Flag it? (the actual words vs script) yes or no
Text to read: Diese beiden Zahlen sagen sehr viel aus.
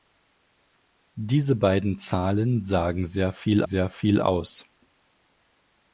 yes